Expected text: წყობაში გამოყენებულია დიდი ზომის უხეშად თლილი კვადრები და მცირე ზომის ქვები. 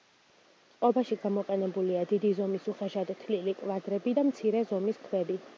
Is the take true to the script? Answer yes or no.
yes